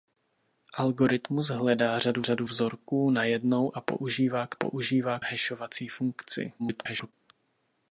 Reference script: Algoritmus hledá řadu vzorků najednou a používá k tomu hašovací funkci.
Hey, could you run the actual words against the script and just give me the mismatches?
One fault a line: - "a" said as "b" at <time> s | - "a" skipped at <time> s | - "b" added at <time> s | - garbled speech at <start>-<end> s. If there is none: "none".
- "řadu" added at 2.2 s
- "tomu" said as "používá" at 4.5 s
- garbled speech at 6.6-7.1 s